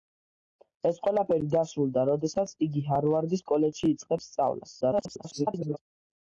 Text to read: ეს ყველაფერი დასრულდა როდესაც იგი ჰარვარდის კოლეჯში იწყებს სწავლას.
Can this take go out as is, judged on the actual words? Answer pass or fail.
fail